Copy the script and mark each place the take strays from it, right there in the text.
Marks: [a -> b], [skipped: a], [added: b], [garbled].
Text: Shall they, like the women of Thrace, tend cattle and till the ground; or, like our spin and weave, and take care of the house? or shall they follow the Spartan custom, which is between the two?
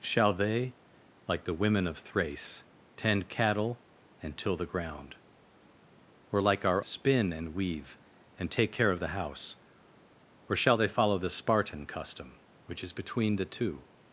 Shall they, like the women of Thrace, tend cattle and till the ground; or, like our spin and weave, and take care of the house? or shall they follow the Spartan custom, which is between the two?